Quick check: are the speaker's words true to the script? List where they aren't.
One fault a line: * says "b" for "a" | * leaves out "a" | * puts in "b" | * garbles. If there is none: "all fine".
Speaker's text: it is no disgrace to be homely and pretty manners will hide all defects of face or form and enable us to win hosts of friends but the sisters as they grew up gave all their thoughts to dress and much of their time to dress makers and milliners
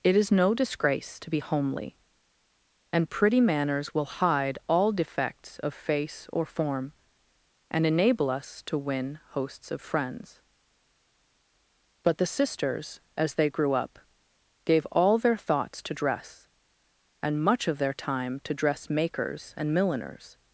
all fine